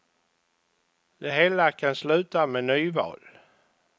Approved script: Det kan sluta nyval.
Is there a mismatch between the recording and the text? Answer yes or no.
yes